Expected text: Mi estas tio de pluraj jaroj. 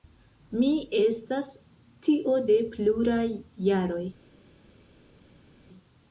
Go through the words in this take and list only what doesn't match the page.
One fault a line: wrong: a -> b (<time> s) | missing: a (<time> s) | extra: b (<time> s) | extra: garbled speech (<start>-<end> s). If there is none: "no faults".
no faults